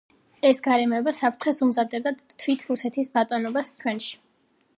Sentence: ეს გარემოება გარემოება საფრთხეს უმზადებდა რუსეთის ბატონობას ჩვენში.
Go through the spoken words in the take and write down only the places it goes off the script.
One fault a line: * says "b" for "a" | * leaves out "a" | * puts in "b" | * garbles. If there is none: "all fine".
* leaves out "გარემოება"
* puts in "თვით"